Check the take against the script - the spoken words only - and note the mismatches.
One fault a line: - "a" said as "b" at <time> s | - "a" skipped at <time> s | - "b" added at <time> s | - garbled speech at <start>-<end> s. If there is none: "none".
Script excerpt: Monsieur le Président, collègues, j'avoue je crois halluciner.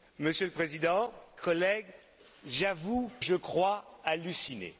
none